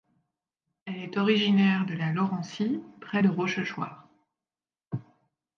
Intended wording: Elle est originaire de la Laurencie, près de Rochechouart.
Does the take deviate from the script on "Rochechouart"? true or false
false